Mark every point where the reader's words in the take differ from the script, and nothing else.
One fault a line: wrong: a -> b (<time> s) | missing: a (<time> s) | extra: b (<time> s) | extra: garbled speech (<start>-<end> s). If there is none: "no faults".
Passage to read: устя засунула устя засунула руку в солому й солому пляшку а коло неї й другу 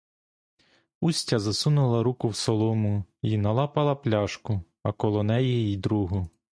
missing: устя засунула (2.0 s)
wrong: солому -> налапала (3.4 s)